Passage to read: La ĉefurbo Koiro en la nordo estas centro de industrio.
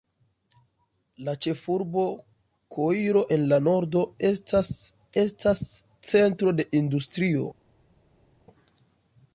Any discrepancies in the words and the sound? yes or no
yes